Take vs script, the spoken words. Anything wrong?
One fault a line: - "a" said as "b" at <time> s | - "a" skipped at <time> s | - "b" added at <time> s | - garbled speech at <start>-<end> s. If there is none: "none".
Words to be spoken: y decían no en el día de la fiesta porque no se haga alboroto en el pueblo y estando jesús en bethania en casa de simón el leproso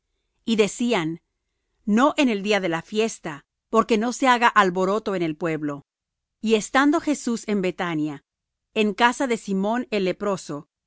none